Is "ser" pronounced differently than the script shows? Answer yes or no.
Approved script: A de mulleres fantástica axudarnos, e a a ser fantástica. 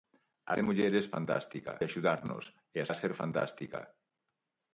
no